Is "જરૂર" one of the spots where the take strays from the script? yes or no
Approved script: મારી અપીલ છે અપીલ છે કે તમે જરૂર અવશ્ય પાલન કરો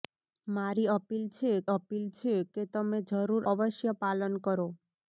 no